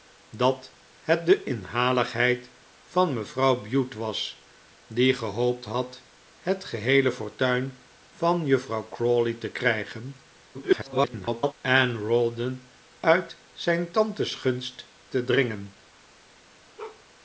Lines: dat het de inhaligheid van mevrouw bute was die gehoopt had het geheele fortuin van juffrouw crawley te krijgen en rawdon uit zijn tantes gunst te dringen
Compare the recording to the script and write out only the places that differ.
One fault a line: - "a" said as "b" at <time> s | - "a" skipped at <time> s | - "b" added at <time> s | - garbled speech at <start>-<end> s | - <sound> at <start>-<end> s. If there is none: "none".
- garbled speech at 10.5-11.5 s
- bark at 16.8-17.0 s